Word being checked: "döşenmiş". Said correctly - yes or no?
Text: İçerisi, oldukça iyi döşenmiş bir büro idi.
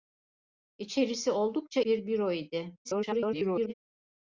no